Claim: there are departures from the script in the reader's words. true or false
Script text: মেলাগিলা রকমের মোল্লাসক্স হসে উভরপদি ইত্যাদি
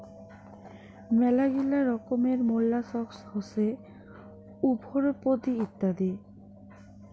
false